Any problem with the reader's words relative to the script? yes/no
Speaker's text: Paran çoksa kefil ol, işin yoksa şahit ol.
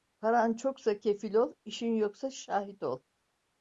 no